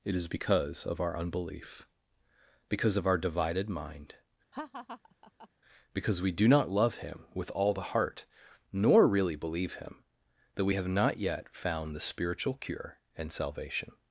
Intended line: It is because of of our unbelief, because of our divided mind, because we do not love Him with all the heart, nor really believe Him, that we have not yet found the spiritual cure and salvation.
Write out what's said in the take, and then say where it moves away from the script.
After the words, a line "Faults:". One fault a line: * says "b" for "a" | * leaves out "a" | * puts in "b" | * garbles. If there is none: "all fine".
It is because of our unbelief, because of our divided mind, because we do not love Him with all the heart, nor really believe Him, that we have not yet found the spiritual cure and salvation.
Faults:
* leaves out "of"